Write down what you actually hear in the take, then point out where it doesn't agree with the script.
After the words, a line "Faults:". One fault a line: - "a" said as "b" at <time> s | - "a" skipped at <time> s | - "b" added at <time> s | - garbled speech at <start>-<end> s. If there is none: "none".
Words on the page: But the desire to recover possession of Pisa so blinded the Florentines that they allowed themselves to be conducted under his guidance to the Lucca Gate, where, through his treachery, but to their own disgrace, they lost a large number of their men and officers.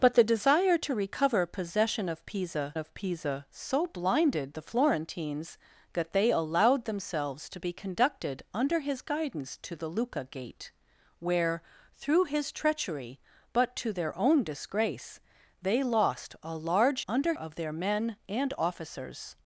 But the desire to recover possession of Pisa of Pisa so blinded the Florentines that they allowed themselves to be conducted under his guidance to the Lucca Gate, where, through his treachery, but to their own disgrace, they lost a large under of their men and officers.
Faults:
- "of Pisa" added at 2.8 s
- "number" said as "under" at 17.1 s